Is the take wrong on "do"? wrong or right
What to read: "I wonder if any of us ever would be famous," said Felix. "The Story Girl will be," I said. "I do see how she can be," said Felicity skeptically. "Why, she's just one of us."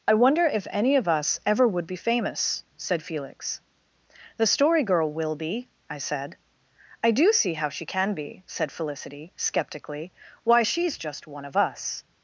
right